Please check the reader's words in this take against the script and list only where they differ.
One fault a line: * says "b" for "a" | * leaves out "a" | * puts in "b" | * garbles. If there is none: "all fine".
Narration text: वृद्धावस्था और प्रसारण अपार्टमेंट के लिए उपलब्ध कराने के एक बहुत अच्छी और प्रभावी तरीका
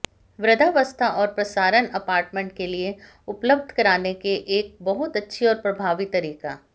all fine